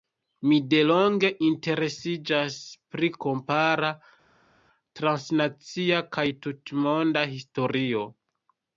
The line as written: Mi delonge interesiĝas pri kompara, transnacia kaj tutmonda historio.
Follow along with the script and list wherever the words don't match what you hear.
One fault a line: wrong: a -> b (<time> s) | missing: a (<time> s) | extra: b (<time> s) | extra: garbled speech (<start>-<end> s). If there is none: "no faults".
no faults